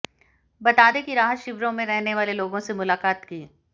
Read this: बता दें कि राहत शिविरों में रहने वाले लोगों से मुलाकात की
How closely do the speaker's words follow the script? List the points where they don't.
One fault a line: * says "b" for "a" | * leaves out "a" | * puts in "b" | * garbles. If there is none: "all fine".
all fine